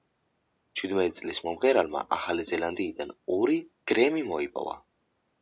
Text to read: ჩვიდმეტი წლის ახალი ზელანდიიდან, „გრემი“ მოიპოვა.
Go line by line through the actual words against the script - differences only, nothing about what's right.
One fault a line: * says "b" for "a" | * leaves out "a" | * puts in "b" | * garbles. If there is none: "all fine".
* puts in "მომღერალმა"
* puts in "ორი"